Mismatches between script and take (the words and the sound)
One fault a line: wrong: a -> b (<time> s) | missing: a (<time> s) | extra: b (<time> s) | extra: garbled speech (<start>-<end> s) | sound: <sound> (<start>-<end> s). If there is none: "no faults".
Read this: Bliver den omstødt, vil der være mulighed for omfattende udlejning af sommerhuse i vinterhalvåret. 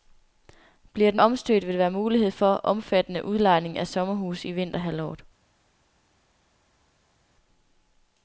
no faults